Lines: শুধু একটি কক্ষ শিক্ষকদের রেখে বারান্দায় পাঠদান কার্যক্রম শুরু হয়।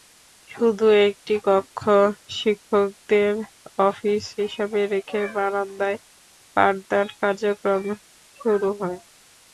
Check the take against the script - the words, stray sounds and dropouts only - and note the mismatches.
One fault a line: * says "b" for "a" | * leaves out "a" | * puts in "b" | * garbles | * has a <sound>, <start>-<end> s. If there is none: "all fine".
* puts in "অফিস হিসেবে"